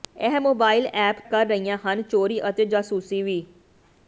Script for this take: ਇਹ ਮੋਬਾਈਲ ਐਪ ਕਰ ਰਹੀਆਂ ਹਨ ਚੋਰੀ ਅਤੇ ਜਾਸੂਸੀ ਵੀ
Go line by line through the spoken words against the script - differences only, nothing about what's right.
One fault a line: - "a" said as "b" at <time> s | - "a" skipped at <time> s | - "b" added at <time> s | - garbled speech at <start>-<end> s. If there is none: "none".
none